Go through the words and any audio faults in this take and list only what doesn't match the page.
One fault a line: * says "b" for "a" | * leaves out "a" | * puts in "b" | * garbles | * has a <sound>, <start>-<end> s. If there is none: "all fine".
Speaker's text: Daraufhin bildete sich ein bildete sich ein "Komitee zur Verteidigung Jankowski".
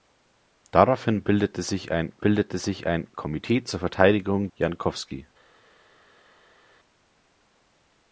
all fine